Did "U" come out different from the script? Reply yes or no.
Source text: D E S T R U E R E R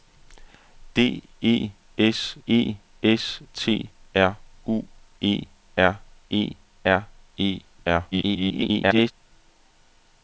no